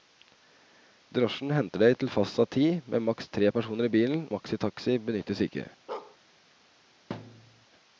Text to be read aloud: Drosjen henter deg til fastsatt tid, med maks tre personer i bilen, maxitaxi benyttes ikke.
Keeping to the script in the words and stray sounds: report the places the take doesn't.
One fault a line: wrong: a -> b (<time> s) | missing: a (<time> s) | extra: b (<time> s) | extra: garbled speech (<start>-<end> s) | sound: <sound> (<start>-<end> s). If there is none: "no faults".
sound: bark (5.9-6.2 s)
sound: thud (7.1-7.7 s)